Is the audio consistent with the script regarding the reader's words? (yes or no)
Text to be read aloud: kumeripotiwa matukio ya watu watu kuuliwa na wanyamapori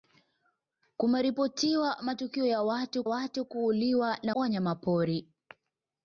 yes